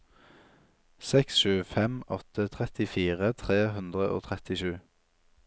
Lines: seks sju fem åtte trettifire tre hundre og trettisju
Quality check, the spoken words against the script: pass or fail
pass